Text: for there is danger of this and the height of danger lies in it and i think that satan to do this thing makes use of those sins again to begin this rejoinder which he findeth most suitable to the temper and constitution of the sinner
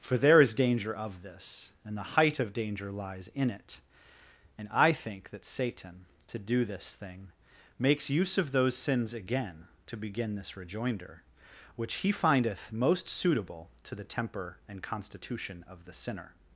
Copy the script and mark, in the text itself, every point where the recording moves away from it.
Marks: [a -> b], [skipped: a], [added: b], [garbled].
for there is danger of this and the height of danger lies in it and i think that satan to do this thing makes use of those sins again to begin this rejoinder which he findeth most suitable to the temper and constitution of the sinner